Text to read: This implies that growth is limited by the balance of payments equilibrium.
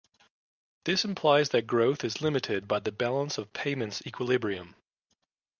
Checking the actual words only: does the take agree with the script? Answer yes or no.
yes